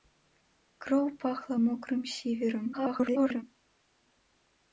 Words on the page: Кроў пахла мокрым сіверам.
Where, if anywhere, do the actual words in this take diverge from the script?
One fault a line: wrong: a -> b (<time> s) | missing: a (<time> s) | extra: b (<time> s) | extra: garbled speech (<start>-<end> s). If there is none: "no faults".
extra: garbled speech (2.7-3.4 s)